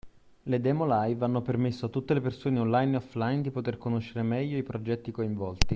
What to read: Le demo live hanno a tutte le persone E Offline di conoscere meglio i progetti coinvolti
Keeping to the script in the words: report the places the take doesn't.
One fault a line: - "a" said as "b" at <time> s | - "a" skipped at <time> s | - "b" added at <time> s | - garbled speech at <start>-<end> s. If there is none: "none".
- "permesso" added at 1.4 s
- "Online" added at 2.6 s
- "poter" added at 3.5 s